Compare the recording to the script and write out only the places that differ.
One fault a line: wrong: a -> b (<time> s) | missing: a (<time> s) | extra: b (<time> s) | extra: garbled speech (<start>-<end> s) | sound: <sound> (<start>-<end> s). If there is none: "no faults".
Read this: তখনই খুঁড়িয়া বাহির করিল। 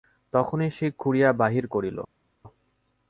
extra: সে (0.7 s)